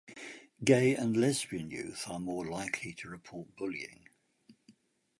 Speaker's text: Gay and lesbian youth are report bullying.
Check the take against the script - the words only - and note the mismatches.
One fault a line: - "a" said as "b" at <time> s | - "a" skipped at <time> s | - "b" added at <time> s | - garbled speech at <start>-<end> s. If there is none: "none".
- "more likely to" added at 2.2 s